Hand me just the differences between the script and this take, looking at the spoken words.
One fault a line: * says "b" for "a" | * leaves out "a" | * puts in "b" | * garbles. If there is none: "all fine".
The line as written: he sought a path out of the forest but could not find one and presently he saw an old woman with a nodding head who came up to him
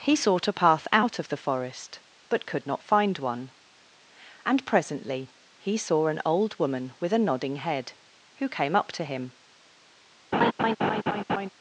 all fine